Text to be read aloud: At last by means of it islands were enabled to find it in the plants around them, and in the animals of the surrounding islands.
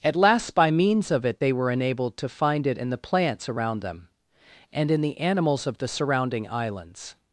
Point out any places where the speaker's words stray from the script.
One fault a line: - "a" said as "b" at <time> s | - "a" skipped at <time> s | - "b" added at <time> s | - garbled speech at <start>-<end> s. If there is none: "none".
- "islands" said as "they" at 1.4 s